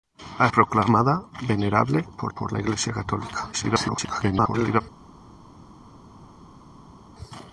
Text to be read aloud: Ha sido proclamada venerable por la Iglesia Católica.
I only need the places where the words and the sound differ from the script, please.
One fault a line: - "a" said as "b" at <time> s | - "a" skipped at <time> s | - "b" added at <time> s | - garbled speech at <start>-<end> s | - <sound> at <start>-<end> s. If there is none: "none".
- "sido" skipped at 0.5 s
- "por" added at 2.3 s
- garbled speech at 3.5-4.8 s